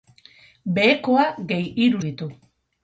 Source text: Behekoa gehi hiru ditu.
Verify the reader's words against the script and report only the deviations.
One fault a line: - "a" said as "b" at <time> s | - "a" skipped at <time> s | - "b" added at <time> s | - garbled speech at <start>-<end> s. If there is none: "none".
none